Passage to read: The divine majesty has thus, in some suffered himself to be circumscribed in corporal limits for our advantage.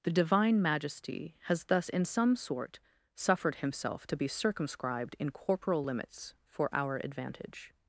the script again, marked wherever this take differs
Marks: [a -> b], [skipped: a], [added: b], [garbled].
The divine majesty has thus, in some [added: sort] suffered himself to be circumscribed in corporal limits for our advantage.